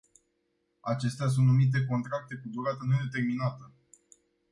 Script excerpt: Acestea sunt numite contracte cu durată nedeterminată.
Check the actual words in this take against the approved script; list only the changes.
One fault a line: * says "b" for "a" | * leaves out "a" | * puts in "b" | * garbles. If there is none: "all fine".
all fine